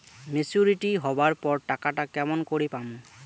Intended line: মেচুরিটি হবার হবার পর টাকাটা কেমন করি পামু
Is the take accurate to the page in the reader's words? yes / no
no